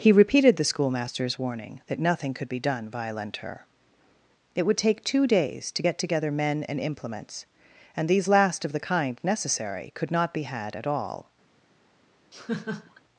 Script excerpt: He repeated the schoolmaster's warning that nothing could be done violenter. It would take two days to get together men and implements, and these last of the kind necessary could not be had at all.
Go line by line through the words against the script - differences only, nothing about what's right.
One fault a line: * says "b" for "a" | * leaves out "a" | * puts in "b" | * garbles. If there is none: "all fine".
all fine